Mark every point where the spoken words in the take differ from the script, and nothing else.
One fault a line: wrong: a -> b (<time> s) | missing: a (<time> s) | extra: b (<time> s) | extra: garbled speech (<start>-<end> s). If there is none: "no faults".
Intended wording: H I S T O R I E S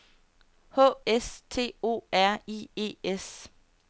missing: I (0.9 s)